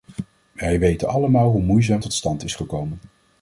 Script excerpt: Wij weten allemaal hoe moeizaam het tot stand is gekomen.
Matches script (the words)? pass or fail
fail